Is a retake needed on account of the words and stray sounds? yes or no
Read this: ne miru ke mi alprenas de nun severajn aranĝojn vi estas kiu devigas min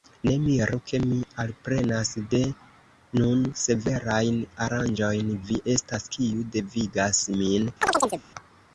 yes